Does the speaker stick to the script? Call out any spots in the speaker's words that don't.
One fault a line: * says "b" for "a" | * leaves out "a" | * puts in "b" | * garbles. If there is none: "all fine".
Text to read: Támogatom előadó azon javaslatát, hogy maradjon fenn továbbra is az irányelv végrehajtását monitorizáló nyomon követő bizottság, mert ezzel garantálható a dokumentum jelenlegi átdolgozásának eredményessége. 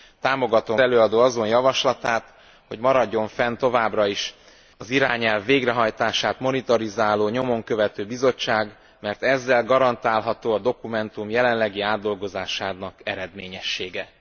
all fine